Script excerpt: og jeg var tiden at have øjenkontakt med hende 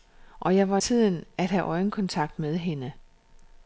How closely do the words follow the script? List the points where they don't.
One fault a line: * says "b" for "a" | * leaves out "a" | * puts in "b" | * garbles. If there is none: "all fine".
all fine